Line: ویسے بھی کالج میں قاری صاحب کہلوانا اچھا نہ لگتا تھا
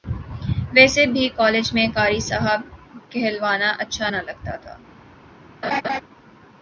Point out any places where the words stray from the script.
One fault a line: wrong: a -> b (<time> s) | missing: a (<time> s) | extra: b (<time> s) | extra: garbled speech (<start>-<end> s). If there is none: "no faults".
no faults